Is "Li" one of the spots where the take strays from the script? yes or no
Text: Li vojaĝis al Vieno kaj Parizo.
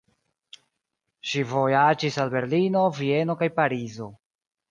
yes